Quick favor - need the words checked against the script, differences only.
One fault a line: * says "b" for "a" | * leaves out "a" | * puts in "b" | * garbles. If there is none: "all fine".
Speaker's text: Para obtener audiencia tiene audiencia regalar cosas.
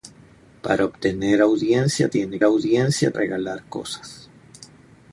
all fine